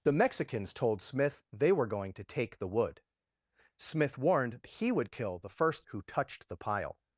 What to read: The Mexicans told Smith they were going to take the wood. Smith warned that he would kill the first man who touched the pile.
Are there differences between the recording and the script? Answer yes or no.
yes